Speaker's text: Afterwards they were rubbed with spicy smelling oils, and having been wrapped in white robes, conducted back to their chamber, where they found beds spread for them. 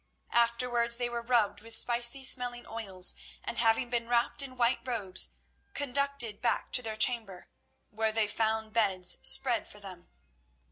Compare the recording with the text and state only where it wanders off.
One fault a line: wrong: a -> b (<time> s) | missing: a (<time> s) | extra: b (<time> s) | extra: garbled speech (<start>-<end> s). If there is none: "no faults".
no faults